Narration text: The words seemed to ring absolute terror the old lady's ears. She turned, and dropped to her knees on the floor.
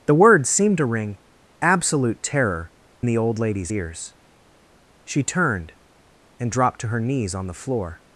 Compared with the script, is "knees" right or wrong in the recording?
right